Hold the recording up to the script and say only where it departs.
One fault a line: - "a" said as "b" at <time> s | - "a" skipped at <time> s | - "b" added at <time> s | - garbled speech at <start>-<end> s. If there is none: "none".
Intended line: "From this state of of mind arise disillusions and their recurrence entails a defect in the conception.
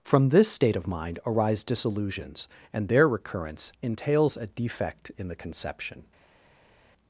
- "of" skipped at 0.9 s